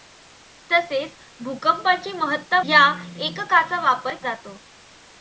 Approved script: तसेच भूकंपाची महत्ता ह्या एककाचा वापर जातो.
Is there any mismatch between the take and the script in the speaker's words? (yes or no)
no